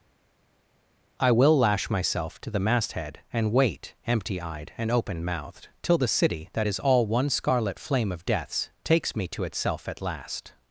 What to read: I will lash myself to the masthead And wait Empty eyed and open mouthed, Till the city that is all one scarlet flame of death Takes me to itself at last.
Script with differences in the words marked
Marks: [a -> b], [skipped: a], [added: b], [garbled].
I will lash myself to the masthead And wait Empty eyed and open mouthed, Till the city that is all one scarlet flame of [death -> deaths] Takes me to itself at last.